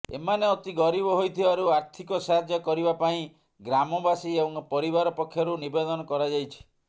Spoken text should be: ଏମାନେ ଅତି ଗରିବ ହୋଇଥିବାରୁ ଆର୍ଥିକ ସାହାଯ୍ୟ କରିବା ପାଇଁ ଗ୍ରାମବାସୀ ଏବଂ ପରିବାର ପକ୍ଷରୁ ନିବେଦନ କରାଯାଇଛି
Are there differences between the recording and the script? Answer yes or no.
no